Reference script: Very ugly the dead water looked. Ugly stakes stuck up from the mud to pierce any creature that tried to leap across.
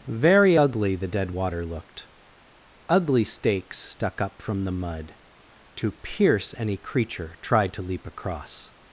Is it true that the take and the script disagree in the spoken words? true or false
true